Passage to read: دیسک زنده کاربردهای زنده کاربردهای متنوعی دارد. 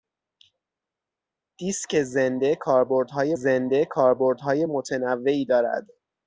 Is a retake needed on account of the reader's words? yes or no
no